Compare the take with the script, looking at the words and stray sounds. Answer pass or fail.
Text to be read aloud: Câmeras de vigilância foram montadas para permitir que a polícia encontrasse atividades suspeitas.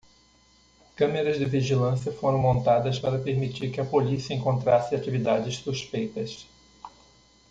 pass